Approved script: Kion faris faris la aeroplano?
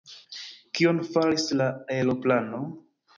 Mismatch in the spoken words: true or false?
true